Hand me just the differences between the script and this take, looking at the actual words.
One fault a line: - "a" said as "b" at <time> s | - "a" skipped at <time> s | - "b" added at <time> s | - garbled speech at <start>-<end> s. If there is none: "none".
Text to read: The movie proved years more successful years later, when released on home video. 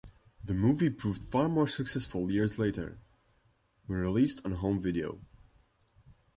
- "years" said as "far" at 1.2 s